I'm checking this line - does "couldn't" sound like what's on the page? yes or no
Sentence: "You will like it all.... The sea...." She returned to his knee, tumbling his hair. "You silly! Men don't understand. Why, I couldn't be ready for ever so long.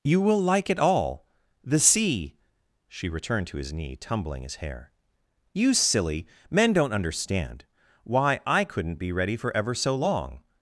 yes